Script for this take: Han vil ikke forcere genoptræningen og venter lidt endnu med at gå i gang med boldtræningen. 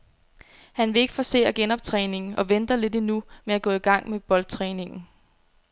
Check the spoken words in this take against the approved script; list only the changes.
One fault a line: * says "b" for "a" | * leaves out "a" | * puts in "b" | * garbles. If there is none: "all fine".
all fine